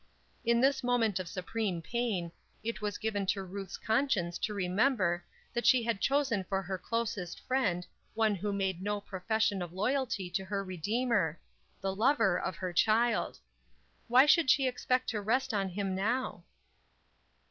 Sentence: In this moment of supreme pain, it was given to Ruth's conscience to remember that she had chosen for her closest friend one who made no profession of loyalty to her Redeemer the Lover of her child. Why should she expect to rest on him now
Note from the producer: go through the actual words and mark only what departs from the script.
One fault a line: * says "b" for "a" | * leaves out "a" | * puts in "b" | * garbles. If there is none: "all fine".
all fine